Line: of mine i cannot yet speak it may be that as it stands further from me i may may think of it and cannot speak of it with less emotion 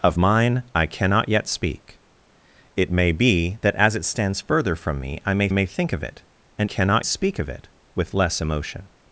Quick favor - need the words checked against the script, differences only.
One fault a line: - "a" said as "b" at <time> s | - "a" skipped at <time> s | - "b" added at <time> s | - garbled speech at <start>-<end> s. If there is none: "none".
none